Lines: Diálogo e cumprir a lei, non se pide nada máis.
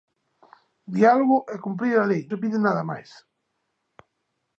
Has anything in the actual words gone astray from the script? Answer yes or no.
yes